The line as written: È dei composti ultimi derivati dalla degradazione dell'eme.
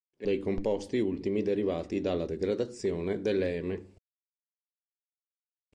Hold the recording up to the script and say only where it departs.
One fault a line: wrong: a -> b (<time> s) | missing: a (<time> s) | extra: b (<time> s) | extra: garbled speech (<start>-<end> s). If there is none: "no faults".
no faults